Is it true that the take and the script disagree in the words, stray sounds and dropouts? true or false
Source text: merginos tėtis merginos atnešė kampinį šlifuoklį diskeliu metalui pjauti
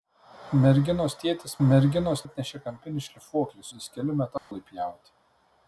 true